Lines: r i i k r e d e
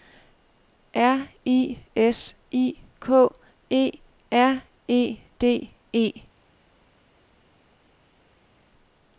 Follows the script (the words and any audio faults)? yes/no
no